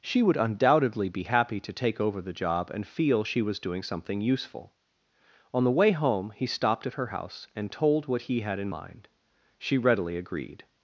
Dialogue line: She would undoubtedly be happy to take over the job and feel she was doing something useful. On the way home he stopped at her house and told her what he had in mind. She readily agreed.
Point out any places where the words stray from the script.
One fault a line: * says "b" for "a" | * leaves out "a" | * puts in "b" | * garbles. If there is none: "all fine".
* leaves out "her"